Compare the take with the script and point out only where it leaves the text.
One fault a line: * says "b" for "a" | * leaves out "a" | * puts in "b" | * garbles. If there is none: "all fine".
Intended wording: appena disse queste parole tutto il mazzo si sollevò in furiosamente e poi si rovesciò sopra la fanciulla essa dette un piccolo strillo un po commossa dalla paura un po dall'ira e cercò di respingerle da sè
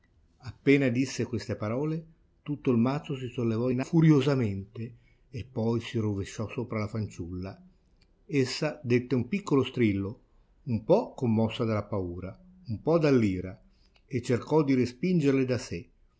all fine